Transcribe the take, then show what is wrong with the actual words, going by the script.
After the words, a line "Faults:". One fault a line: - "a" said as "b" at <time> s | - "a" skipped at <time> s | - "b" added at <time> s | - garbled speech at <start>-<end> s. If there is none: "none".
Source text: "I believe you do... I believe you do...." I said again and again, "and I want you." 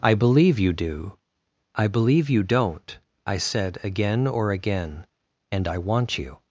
"I believe you do... I believe you don't...." I said again or again, "and I want you."
Faults:
- "do" said as "don't" at 2.4 s
- "and" said as "or" at 4.2 s